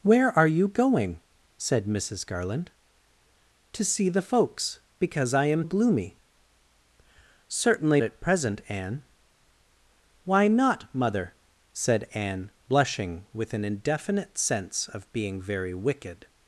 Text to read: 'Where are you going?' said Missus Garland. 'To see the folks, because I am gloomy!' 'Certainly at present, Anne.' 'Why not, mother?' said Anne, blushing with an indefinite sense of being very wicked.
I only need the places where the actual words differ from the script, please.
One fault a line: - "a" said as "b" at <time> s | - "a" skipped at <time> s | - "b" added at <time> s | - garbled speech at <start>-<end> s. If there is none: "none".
none